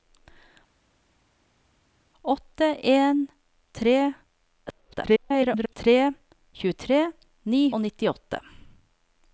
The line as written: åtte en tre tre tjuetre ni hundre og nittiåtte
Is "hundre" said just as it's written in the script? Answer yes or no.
no